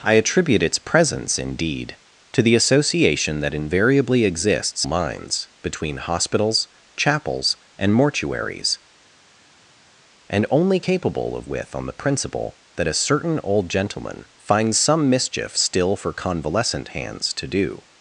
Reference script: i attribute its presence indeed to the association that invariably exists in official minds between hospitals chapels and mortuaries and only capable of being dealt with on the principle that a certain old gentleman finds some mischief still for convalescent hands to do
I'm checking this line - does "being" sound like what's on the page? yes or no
no